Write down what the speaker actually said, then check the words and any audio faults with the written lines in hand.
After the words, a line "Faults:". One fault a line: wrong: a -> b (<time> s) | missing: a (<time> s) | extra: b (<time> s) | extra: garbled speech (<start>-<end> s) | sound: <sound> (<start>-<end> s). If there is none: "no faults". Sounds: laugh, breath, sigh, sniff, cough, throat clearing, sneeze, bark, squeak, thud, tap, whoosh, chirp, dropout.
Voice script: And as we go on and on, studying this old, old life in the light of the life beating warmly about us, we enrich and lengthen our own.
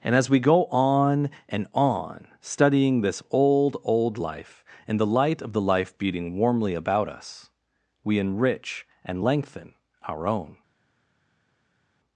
And as we go on and on, studying this old, old life in the light of the life beating warmly about us, we enrich and lengthen our own.
Faults:
no faults